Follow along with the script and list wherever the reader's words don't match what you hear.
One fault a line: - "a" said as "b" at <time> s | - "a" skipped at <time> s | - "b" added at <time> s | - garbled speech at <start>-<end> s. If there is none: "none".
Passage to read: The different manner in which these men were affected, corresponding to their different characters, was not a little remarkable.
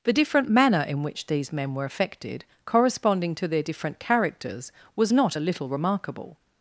none